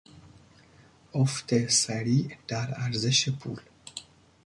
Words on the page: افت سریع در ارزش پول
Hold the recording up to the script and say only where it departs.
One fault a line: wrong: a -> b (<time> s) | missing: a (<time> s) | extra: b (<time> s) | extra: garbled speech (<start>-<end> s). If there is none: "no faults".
no faults